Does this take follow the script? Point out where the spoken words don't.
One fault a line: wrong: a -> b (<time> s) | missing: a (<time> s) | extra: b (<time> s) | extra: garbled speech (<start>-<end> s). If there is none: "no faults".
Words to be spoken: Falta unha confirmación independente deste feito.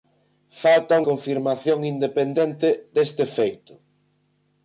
missing: unha (1.0 s)